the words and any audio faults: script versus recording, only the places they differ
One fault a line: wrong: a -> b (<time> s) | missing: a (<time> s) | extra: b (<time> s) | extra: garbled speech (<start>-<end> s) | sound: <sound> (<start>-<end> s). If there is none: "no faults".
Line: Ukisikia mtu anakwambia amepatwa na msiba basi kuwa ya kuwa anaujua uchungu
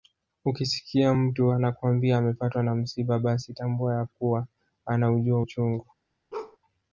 wrong: kuwa -> tambua (3.5 s)
sound: bark (6.3-6.6 s)